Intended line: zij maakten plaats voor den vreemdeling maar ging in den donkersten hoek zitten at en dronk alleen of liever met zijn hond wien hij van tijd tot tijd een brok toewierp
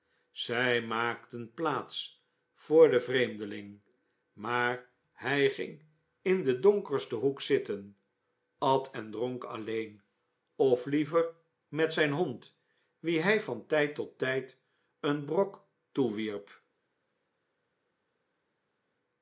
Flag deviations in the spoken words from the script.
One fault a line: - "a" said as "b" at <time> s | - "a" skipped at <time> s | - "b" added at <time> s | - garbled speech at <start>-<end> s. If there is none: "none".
- "hij" added at 5.1 s